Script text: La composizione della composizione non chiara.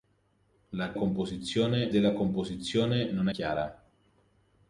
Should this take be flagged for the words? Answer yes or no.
no